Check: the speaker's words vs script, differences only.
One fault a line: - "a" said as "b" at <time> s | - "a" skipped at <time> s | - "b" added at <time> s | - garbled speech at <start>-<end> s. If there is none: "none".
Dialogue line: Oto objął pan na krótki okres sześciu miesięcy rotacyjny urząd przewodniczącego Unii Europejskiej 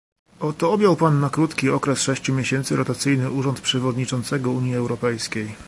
none